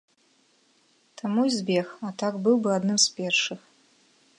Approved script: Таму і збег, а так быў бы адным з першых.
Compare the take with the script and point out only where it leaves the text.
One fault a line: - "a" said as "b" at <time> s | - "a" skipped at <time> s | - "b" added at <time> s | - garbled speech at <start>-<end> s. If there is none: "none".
none